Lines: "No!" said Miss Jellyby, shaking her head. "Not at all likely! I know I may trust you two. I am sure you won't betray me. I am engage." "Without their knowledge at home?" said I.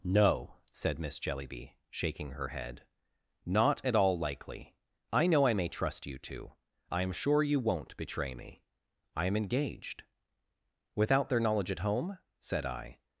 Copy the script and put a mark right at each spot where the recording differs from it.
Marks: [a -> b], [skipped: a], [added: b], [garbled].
"No!" said Miss Jellyby, shaking her head. "Not at all likely! I know I may trust you two. I am sure you won't betray me. I am [engage." -> engaged] "Without their knowledge at home?" said I.